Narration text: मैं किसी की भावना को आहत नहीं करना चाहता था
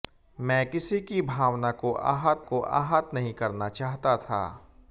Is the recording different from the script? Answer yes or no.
yes